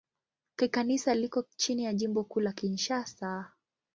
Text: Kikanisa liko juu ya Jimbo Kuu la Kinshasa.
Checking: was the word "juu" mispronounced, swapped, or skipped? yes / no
yes